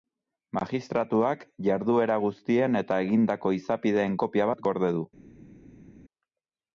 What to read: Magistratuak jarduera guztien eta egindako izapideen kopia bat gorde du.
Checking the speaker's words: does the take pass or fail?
pass